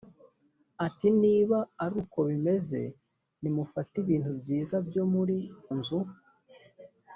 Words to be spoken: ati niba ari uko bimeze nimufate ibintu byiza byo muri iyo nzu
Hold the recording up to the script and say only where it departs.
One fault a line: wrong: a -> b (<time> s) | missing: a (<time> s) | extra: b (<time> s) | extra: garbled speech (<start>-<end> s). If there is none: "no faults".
missing: iyo (5.4 s)